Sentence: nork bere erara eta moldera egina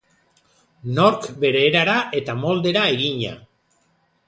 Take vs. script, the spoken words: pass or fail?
pass